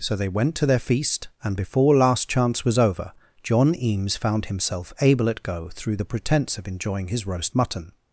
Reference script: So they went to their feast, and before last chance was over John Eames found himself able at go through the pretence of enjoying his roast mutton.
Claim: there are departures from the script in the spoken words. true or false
false